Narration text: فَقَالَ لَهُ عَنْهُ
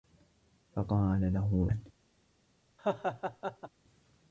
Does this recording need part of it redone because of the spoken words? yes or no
no